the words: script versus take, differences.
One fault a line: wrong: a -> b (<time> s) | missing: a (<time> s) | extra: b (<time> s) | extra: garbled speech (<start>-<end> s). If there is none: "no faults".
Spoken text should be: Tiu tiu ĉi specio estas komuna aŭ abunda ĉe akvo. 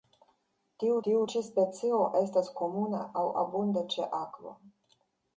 no faults